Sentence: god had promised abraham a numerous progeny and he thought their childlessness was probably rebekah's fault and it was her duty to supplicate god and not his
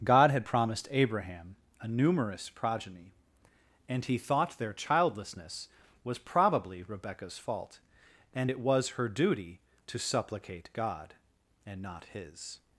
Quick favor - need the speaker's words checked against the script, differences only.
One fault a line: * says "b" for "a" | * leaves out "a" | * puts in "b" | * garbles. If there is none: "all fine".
all fine